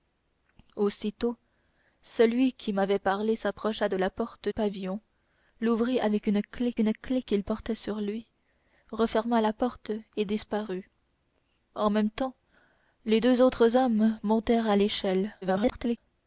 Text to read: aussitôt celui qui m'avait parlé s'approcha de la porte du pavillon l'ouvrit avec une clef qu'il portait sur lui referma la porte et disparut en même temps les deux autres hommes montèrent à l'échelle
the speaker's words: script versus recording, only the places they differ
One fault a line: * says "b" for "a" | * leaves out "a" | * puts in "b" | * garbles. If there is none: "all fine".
* leaves out "du"
* puts in "une clef"
* garbles